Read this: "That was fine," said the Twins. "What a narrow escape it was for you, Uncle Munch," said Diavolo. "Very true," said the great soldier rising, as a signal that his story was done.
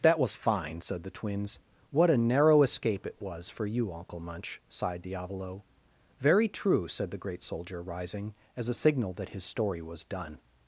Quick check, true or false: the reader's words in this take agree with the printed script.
false